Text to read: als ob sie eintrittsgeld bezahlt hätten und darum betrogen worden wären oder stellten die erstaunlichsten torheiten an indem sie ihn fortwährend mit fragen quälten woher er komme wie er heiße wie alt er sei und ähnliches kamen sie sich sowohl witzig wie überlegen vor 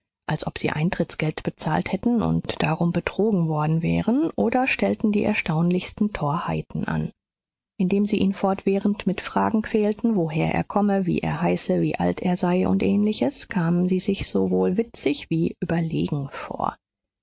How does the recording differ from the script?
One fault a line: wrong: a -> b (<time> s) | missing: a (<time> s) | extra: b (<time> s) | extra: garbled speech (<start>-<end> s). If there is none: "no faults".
no faults